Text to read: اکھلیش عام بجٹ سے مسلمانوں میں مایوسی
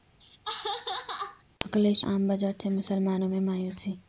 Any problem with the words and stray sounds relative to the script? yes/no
yes